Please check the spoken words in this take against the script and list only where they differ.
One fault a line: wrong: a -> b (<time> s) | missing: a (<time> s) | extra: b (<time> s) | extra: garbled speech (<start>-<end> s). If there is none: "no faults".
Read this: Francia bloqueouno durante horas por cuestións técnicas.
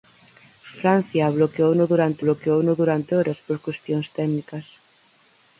extra: bloqueouno durante (2.2 s)